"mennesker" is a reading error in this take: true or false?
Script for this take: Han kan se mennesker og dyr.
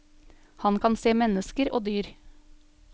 false